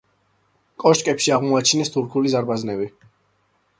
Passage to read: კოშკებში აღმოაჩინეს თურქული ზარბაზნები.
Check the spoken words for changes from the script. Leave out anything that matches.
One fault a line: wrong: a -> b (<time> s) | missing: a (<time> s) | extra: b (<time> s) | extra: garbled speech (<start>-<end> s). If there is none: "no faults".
no faults